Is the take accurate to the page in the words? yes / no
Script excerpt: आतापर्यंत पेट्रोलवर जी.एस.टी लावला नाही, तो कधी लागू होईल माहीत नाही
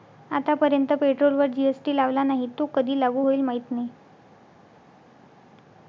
yes